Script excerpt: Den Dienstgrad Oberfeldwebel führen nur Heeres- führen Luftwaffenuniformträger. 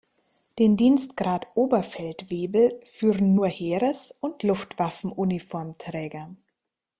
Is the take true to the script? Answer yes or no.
no